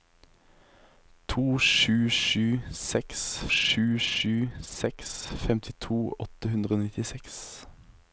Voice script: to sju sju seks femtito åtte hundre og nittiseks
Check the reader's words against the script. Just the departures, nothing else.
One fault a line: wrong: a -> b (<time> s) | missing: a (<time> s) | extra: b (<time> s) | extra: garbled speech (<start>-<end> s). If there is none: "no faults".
extra: sju sju seks (3.5 s)